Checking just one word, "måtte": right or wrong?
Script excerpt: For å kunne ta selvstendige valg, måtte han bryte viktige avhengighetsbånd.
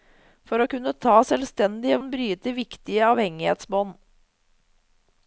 wrong